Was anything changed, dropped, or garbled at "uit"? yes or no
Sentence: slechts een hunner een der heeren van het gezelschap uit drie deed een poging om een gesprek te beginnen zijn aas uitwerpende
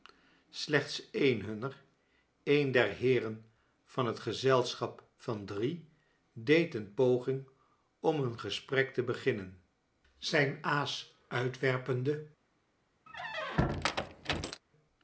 yes